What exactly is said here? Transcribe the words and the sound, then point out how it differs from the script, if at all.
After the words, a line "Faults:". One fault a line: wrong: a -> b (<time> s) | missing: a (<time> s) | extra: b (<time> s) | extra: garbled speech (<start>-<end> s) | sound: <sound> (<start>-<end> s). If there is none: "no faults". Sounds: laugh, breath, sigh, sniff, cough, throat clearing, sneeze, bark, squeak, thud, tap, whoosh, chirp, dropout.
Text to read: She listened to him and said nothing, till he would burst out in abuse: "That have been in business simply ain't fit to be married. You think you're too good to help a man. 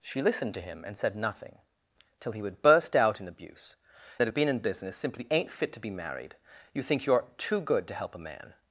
She listened to him and said nothing, till he would burst out in abuse: "That have been in business simply ain't fit to be married. You think you're too good to help a man.
Faults:
no faults